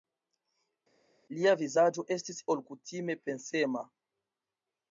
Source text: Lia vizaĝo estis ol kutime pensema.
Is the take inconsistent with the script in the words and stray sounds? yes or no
no